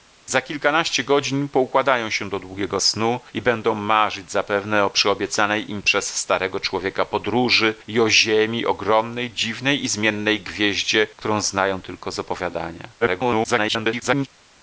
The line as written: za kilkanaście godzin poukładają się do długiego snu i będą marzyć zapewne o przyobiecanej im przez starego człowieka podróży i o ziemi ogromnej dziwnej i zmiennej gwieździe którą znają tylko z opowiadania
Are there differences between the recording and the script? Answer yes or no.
yes